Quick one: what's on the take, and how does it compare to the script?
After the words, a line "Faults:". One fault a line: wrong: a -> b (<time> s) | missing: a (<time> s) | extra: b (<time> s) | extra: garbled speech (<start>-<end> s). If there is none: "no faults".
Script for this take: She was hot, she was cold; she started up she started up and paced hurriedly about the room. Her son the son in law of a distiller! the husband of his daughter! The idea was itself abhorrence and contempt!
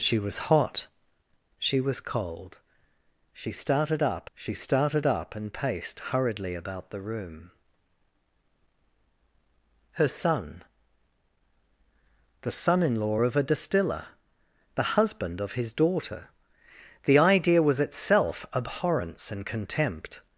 She was hot, she was cold; she started up she started up and paced hurriedly about the room. Her son the son in law of a distiller! the husband of his daughter! The idea was itself abhorrence and contempt!
Faults:
no faults